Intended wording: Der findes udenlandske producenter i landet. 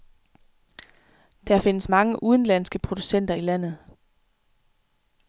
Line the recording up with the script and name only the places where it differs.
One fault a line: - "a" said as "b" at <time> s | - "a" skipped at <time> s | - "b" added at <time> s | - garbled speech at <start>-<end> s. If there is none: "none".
- "mange" added at 1.9 s